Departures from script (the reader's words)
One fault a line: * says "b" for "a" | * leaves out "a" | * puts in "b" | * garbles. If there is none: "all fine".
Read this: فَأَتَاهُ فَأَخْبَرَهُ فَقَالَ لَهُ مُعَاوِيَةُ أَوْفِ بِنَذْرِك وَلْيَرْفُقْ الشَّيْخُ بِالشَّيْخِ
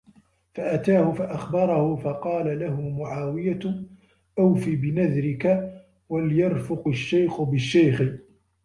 all fine